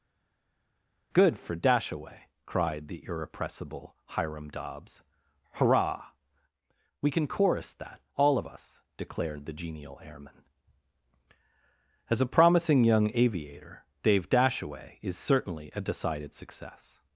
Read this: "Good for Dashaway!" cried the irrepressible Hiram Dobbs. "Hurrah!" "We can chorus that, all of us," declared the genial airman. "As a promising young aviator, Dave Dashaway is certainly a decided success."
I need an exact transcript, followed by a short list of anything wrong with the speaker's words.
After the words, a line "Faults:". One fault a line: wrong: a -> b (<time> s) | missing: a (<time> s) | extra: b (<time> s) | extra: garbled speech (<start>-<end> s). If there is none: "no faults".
"Good for Dashaway!" cried the irrepressible Hiram Dobbs. "Hurrah!" "We can chorus that, all of us," declared the genial airman. "As a promising young aviator, Dave Dashaway is certainly a decided success."
Faults:
no faults